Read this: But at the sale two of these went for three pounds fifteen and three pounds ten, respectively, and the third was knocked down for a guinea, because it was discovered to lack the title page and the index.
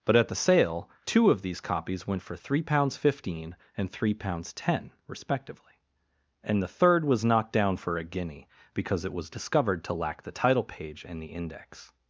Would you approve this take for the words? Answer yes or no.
no